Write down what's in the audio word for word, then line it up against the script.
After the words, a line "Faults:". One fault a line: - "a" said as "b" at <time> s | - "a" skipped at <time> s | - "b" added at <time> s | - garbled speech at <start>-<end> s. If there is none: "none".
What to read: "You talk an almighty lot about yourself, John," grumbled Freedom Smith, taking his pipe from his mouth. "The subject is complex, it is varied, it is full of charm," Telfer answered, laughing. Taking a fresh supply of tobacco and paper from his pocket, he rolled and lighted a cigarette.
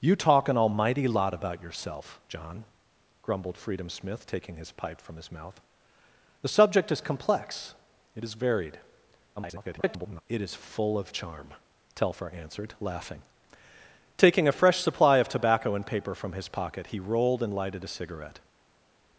"You talk an almighty lot about yourself, John," grumbled Freedom Smith, taking his pipe from his mouth. "The subject is complex, it is varied, [garbled] it is full of charm," Telfer answered, laughing. Taking a fresh supply of tobacco and paper from his pocket, he rolled and lighted a cigarette.
Faults:
- garbled speech at 9.4-10.2 s